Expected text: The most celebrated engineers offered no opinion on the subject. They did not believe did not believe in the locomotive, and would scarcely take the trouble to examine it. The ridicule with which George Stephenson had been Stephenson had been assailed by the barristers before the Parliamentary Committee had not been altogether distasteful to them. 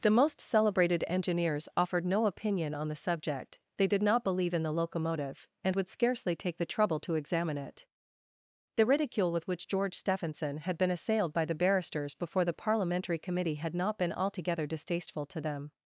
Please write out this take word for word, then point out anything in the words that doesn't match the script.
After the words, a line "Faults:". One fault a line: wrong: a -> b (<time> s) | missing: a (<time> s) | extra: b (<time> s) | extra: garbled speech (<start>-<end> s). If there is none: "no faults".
The most celebrated engineers offered no opinion on the subject. They did not believe in the locomotive, and would scarcely take the trouble to examine it. The ridicule with which George Stephenson had been assailed by the barristers before the Parliamentary Committee had not been altogether distasteful to them.
Faults:
missing: did not believe (4.5 s)
missing: Stephenson had been (10.9 s)